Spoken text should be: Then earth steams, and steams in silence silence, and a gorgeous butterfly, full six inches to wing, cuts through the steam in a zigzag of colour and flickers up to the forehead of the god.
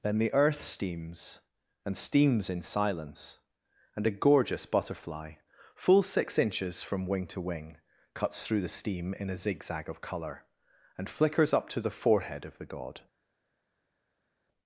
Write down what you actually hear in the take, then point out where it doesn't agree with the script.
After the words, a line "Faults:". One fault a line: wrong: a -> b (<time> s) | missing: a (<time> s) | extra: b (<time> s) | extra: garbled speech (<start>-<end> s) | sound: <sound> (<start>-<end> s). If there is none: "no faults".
Then the earth steams, and steams in silence, and a gorgeous butterfly, full six inches from wing to wing, cuts through the steam in a zigzag of colour and flickers up to the forehead of the god.
Faults:
extra: the (0.2 s)
missing: silence (3.4 s)
extra: from wing (6.8 s)